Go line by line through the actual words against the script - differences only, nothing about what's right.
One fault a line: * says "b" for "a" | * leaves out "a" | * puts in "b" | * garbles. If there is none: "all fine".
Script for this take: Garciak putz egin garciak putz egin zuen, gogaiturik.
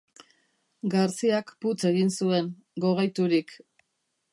* leaves out "garciak putz egin"